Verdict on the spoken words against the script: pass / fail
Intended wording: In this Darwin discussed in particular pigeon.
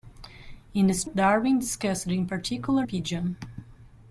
pass